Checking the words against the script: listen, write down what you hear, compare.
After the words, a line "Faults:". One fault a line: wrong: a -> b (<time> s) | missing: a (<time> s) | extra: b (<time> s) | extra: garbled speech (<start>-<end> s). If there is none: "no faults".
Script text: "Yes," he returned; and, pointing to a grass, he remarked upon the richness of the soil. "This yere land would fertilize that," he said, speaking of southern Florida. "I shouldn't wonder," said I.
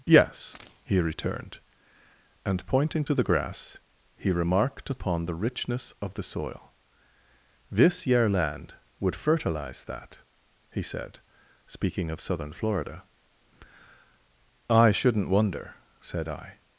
"Yes," he returned; and, pointing to the grass, he remarked upon the richness of the soil. "This yere land would fertilize that," he said, speaking of southern Florida. "I shouldn't wonder," said I.
Faults:
wrong: a -> the (3.1 s)